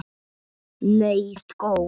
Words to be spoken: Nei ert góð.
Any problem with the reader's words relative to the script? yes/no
no